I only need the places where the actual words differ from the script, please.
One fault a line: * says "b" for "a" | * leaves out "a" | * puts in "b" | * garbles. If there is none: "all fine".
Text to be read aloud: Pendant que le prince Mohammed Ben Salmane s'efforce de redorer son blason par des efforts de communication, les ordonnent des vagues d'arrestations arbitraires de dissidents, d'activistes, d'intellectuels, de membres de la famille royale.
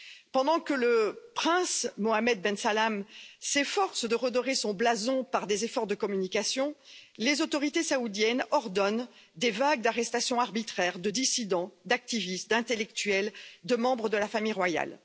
* puts in "autorités saoudiennes"